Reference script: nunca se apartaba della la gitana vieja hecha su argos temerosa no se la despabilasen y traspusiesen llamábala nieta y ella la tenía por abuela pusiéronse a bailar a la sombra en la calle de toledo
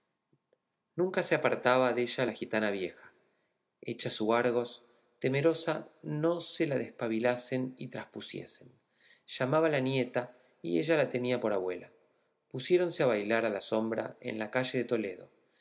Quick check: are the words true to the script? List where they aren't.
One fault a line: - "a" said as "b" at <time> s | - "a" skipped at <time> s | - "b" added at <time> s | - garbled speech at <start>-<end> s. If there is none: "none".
none